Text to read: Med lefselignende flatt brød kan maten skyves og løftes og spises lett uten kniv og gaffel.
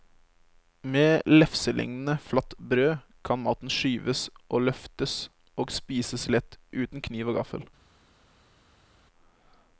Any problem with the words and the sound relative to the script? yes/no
no